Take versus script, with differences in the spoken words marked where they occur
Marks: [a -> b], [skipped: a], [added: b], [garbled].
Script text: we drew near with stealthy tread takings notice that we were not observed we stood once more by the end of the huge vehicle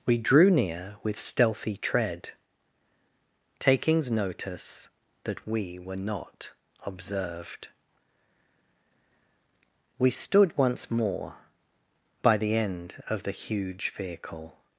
we drew near with stealthy tread takings notice that we were not observed we stood once more by the end of the huge vehicle